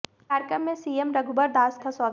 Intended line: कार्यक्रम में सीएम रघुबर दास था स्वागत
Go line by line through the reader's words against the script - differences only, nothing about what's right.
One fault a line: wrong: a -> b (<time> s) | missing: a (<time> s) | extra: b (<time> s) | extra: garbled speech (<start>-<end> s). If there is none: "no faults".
no faults